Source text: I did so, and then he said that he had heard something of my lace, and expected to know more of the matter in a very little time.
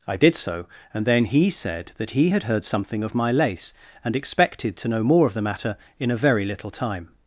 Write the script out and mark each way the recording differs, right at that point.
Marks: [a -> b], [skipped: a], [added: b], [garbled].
I did so, and then he said that he had heard something of my lace, and expected to know more of the matter in a very little time.